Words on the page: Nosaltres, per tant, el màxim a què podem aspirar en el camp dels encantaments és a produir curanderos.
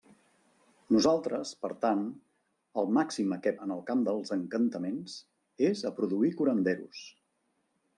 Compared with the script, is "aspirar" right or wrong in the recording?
wrong